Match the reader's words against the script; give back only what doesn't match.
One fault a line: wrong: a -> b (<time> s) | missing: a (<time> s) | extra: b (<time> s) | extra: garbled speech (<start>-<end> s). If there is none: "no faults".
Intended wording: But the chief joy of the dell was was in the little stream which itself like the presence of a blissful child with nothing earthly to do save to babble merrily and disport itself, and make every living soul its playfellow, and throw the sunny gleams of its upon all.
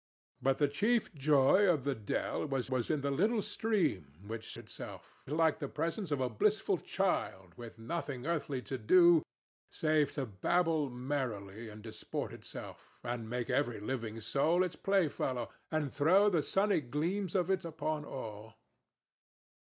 no faults